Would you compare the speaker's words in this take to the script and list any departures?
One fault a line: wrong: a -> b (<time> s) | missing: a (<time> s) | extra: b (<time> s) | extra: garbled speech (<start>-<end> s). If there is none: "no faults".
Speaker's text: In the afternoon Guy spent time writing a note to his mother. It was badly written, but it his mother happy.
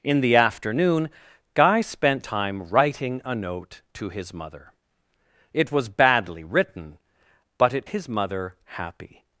no faults